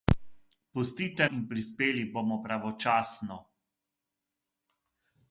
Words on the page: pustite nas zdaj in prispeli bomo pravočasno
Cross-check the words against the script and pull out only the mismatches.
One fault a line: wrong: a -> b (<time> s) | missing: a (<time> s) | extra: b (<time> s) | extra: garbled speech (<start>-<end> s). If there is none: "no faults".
missing: nas zdaj (1.3 s)